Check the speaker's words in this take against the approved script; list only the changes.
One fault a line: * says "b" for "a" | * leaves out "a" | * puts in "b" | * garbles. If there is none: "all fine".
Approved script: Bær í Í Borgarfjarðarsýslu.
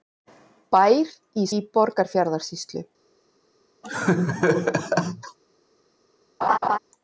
all fine